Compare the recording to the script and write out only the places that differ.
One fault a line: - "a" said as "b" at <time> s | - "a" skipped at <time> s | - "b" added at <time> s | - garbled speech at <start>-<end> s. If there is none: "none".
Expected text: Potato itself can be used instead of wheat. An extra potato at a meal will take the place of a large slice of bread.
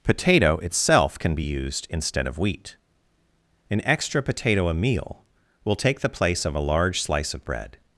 - "at" skipped at 4.7 s